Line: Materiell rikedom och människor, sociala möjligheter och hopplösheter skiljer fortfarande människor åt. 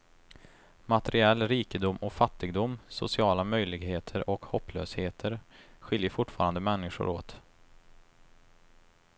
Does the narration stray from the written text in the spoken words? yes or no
yes